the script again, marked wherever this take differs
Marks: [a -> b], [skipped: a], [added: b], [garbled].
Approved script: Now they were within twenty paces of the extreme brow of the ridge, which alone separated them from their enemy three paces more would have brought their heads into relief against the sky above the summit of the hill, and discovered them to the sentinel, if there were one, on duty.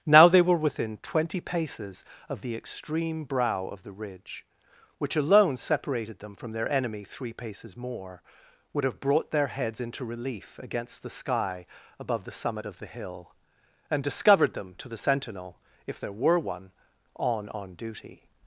Now they were within twenty paces of the extreme brow of the ridge, which alone separated them from their enemy three paces more would have brought their heads into relief against the sky above the summit of the hill, and discovered them to the sentinel, if there were one, on [added: on] duty.